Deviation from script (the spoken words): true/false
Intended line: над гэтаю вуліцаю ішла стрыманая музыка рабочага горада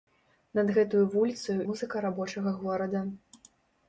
true